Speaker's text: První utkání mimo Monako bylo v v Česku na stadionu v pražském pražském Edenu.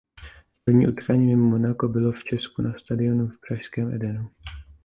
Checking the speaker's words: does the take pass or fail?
fail